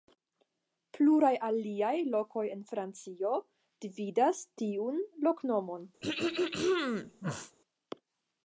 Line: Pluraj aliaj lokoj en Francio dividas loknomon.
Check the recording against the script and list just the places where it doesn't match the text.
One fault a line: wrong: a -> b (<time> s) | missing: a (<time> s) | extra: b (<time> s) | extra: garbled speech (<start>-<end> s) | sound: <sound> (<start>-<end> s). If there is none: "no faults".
extra: tiun (4.6 s)
sound: throat clearing (6.0-7.6 s)